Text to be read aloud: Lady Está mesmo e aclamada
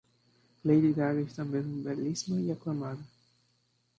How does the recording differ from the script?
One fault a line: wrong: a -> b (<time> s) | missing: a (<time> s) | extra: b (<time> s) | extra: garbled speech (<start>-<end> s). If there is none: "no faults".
extra: Gaga (0.9 s)
extra: belíssima (1.8 s)